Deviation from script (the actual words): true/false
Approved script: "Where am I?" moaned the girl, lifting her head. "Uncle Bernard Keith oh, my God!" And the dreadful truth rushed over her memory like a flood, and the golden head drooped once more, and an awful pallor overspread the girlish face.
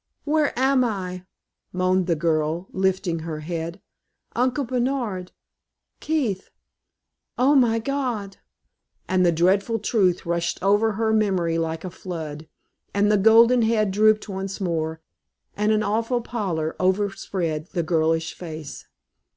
false